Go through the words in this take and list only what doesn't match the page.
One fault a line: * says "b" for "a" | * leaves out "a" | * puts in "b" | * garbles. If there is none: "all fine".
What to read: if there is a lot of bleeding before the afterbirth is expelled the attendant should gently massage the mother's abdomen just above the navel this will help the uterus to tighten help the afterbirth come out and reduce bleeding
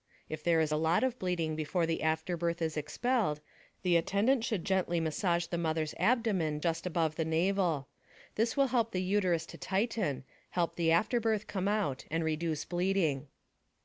all fine